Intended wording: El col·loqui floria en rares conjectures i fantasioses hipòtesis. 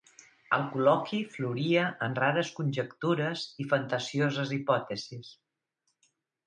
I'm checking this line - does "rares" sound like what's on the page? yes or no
yes